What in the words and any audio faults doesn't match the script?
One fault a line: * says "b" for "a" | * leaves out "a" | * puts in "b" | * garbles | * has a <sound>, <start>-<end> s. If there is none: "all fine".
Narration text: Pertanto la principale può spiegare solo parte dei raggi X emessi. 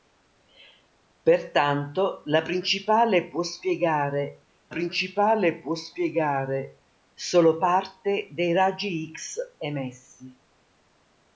* puts in "principale può spiegare"